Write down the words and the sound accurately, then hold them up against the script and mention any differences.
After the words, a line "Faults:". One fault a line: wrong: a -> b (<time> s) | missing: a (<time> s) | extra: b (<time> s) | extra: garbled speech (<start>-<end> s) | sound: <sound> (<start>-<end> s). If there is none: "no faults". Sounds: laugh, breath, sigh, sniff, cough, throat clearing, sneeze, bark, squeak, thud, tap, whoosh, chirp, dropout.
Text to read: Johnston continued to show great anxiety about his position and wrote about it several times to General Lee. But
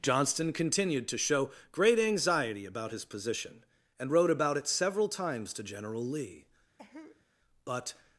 Johnston continued to show great anxiety about his position and wrote about it several times to General Lee. But
Faults:
sound: cough (6.8-7.3 s)